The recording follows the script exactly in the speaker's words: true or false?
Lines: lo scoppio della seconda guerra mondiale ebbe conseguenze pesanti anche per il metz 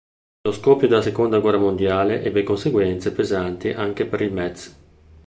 true